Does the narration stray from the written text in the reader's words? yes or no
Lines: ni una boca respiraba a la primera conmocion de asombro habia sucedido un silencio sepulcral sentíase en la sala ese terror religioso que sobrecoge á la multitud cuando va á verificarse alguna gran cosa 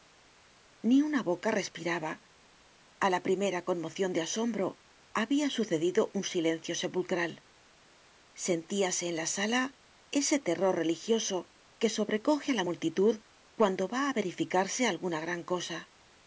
no